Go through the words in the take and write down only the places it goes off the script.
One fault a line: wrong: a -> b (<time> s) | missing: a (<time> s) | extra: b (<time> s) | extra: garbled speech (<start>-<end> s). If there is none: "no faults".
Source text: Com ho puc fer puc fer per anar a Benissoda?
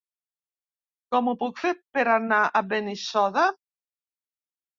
missing: puc fer (1.7 s)